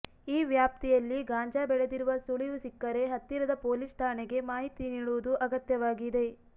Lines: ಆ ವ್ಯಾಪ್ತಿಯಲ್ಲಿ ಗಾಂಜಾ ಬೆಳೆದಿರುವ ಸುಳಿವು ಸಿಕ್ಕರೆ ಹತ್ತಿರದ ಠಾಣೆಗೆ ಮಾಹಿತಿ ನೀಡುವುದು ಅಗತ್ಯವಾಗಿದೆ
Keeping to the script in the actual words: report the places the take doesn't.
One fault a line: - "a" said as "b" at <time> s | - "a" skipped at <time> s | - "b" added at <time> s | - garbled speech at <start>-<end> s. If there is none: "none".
- "ಆ" said as "ಈ" at 0.3 s
- "ಪೊಲೀಸ್" added at 3.6 s